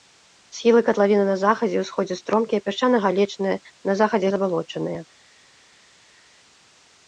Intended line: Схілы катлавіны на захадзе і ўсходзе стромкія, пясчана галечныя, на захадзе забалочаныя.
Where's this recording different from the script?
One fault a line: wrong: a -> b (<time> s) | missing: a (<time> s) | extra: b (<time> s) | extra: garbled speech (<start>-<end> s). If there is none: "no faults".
no faults